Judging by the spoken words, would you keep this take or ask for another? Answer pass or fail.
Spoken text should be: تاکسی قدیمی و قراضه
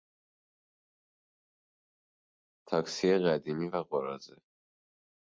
pass